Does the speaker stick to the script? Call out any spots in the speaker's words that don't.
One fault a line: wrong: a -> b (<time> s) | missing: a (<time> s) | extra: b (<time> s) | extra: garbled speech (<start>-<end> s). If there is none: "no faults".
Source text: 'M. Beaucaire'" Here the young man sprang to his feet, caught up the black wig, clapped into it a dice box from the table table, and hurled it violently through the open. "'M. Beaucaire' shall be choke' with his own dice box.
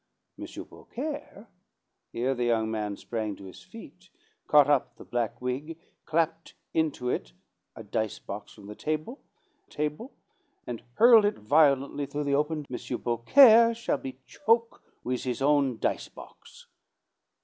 no faults